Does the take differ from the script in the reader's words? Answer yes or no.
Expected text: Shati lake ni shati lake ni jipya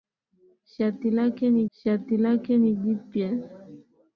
no